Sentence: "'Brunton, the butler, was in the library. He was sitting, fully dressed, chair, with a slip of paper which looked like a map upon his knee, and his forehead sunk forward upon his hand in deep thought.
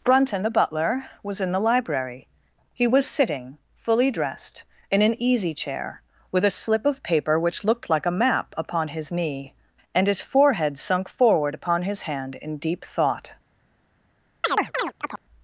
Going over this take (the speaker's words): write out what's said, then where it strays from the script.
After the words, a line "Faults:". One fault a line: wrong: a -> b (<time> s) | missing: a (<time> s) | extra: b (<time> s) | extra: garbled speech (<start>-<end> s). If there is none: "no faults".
"'Brunton, the butler, was in the library. He was sitting, fully dressed, in an easy chair, with a slip of paper which looked like a map upon his knee, and his forehead sunk forward upon his hand in deep thought.
Faults:
extra: in an easy (4.9 s)